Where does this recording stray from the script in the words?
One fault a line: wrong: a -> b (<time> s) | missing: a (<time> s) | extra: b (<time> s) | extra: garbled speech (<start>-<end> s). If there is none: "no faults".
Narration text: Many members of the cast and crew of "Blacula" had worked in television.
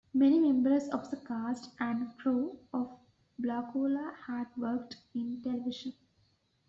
no faults